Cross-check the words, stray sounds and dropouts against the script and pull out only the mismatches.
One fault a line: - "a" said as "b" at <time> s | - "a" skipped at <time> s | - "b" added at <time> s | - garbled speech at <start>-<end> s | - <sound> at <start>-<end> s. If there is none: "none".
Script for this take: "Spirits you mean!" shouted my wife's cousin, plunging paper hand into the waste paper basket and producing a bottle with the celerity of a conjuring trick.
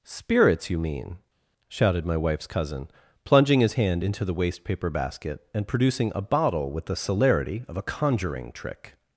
- "paper" said as "his" at 3.6 s